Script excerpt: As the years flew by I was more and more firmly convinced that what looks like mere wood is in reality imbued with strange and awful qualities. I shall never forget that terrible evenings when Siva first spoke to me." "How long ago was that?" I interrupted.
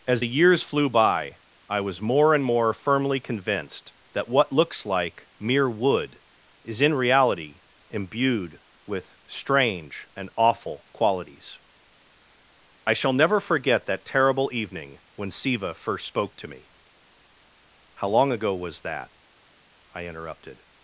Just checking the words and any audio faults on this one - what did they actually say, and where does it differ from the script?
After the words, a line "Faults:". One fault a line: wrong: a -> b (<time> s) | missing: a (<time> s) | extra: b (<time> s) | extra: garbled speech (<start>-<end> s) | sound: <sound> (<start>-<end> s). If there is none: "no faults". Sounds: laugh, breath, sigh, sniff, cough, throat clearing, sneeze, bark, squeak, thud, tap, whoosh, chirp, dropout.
As the years flew by I was more and more firmly convinced that what looks like mere wood is in reality imbued with strange and awful qualities. I shall never forget that terrible evening when Siva first spoke to me." "How long ago was that?" I interrupted.
Faults:
wrong: evenings -> evening (14.5 s)